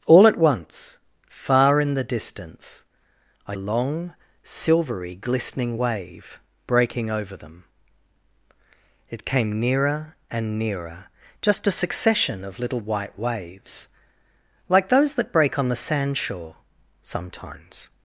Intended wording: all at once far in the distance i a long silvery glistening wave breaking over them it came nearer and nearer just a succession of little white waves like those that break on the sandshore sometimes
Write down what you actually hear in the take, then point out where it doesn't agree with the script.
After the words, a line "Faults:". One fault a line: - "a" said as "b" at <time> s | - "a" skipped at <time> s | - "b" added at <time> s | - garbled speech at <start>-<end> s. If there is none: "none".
all at once far in the distance i a long silvery glistening wave breaking over them it came nearer and nearer just a succession of little white waves like those that break on the sandshore sometimes
Faults:
none